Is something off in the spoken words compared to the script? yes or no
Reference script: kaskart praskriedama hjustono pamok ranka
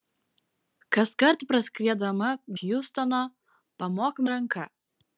no